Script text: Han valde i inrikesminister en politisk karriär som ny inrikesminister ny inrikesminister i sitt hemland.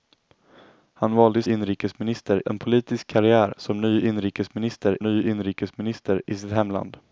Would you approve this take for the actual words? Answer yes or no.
yes